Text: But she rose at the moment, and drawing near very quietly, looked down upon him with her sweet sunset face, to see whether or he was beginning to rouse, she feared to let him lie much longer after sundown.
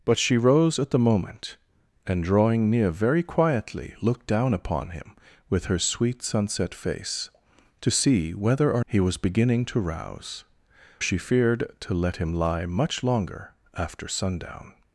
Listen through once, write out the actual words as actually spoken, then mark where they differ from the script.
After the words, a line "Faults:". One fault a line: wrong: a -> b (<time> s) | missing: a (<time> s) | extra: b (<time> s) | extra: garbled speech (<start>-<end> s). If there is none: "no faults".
But she rose at the moment, and drawing near very quietly, looked down upon him with her sweet sunset face, to see whether or he was beginning to rouse, she feared to let him lie much longer after sundown.
Faults:
no faults